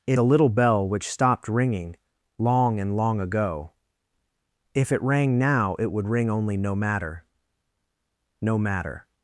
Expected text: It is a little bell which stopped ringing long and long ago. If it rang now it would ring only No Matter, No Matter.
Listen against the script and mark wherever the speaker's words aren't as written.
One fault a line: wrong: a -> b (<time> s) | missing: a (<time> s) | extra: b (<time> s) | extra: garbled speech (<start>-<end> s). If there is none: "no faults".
missing: is (0.2 s)